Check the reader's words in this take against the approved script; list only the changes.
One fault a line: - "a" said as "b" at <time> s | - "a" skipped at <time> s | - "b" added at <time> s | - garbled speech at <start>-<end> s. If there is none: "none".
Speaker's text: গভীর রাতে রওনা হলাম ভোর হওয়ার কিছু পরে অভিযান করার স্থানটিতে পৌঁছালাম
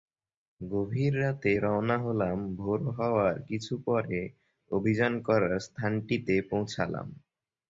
none